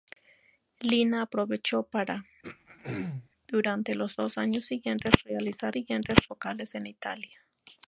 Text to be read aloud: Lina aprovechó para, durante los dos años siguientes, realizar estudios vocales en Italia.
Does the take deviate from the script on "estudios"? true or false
true